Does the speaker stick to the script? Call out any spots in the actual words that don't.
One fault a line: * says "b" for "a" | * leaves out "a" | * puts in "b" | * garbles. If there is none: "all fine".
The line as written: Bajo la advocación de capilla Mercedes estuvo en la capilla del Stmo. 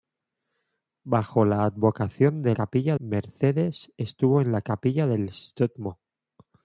all fine